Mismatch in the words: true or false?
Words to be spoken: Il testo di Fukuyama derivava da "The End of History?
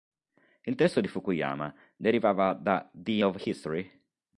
true